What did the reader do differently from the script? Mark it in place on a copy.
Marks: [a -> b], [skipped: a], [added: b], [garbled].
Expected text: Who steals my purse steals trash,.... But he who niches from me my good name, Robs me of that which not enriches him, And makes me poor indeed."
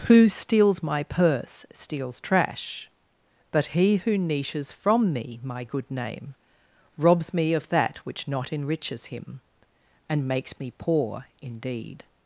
Who steals my purse steals trash,.... But he who niches from me my good name, Robs me of that which not enriches him, And makes me poor indeed."